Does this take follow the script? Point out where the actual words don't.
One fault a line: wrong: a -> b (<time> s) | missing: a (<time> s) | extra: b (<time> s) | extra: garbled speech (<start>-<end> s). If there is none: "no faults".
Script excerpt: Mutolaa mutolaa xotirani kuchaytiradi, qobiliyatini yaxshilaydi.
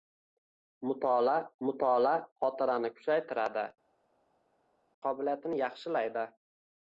no faults